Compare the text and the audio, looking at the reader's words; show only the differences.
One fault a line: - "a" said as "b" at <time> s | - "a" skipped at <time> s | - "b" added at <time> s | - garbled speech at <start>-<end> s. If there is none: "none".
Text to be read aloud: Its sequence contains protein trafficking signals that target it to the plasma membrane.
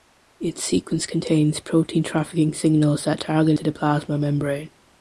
- "it" skipped at 3.6 s